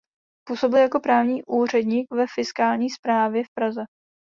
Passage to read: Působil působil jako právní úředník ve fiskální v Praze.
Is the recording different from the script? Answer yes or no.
yes